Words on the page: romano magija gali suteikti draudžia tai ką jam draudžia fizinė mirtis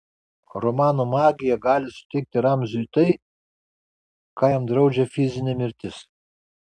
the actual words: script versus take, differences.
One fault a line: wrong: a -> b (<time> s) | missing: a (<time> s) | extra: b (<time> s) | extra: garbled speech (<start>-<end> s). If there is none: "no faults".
wrong: draudžia -> ramziui (2.5 s)